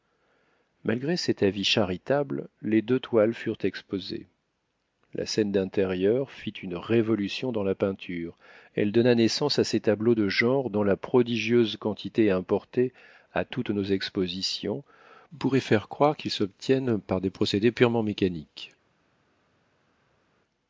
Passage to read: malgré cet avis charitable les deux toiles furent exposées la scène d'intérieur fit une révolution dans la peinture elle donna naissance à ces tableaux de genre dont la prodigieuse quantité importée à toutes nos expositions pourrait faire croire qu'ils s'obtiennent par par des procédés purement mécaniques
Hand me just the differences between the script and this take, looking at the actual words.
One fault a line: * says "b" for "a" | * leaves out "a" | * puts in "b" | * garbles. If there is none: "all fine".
* leaves out "par"